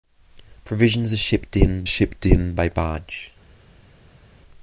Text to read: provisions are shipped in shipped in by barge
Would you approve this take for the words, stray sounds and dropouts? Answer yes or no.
yes